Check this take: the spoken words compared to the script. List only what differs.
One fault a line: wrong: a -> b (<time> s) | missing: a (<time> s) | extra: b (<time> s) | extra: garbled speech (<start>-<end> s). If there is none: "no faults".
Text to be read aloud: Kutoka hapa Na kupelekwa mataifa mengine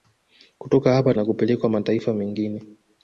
no faults